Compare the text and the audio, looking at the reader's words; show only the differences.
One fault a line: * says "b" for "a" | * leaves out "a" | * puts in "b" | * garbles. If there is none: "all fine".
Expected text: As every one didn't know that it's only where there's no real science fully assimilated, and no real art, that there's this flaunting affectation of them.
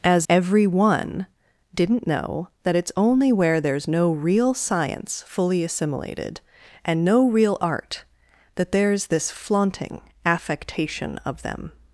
all fine